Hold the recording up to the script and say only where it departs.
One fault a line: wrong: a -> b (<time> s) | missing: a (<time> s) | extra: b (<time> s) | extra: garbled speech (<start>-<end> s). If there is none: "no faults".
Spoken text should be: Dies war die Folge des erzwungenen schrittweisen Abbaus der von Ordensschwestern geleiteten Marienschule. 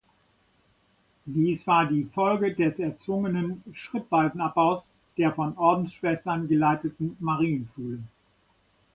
no faults